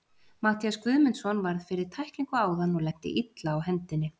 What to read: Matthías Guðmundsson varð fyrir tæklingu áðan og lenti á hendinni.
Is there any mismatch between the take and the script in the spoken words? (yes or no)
yes